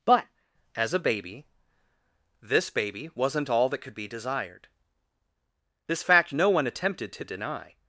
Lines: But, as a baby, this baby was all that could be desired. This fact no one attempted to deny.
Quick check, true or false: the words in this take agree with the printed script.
false